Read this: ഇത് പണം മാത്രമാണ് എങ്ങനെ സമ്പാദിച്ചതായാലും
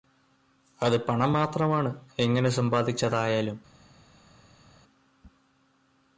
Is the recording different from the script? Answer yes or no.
yes